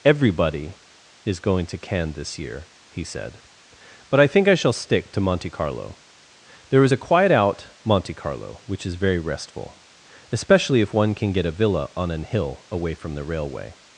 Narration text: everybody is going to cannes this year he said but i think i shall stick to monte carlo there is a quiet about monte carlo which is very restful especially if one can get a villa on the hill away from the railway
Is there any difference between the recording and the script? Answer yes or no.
yes